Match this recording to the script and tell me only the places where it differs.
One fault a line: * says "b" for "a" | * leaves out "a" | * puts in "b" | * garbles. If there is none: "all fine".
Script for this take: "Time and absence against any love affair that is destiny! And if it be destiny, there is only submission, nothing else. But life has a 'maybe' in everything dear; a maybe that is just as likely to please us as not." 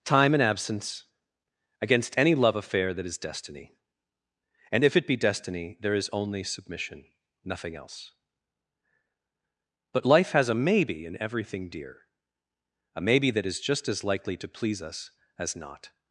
all fine